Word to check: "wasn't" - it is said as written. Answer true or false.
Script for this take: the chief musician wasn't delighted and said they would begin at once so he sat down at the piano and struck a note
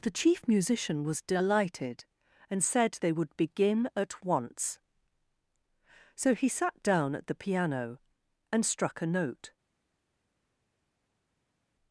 false